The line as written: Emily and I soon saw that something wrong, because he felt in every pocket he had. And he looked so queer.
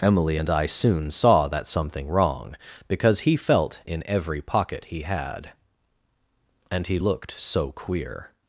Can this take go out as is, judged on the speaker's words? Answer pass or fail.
pass